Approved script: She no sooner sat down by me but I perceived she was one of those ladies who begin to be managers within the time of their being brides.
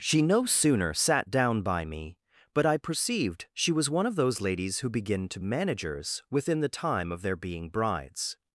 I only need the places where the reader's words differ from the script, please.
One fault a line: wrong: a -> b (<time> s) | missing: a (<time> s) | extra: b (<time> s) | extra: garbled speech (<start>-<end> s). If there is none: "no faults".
missing: be (5.4 s)